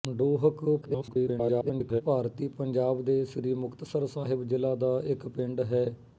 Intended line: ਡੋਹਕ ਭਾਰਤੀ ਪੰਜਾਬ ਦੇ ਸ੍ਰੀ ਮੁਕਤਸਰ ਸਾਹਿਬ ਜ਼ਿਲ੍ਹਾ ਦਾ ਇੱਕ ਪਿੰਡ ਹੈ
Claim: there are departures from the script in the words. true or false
true